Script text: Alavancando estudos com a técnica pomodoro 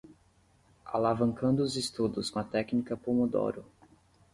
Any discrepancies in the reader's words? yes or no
yes